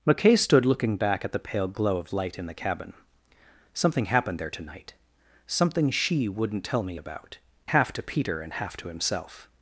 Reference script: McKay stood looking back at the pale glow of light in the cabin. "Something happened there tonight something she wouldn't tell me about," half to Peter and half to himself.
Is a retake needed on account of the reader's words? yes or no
no